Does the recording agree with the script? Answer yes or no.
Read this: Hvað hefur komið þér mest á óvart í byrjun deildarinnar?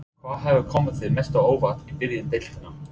yes